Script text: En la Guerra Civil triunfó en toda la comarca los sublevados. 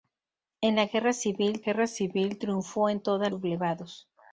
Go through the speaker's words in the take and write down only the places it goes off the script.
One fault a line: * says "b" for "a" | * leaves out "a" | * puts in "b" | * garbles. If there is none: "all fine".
* puts in "Guerra Civil"
* leaves out "la comarca los"